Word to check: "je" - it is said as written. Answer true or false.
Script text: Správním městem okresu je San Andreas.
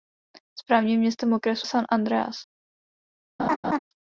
false